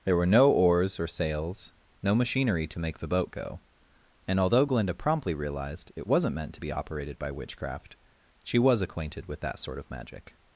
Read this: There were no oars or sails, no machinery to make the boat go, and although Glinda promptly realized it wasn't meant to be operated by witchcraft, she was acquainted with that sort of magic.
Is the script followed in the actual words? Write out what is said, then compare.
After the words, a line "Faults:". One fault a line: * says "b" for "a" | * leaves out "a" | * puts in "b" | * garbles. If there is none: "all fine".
There were no oars or sails, no machinery to make the boat go, and although Glinda promptly realized it wasn't meant to be operated by witchcraft, she was acquainted with that sort of magic.
Faults:
all fine